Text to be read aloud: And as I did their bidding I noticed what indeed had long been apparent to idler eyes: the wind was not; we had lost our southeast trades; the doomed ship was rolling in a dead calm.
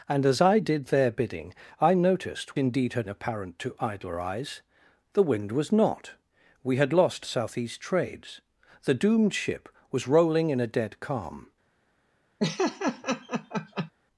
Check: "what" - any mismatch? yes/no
yes